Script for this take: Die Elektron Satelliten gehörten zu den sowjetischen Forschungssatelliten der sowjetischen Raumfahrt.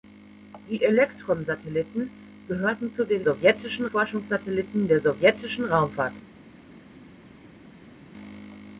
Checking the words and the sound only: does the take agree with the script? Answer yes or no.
yes